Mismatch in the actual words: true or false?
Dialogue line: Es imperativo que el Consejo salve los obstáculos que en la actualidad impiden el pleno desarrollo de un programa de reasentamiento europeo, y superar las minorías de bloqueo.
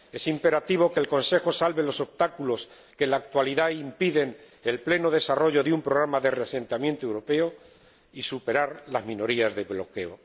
false